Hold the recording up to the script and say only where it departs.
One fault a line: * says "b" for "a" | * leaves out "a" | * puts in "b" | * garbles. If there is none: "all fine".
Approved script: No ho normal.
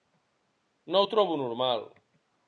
* puts in "trobo"